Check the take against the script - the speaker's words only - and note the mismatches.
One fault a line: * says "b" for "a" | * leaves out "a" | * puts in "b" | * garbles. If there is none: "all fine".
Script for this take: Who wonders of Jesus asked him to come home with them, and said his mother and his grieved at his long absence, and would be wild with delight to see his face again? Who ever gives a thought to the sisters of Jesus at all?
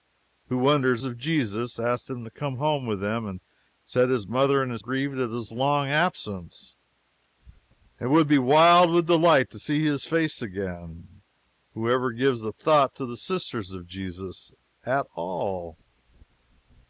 all fine